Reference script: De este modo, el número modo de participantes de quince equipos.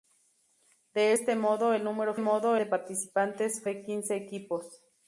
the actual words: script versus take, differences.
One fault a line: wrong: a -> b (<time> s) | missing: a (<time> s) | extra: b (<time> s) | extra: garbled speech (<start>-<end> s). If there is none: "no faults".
no faults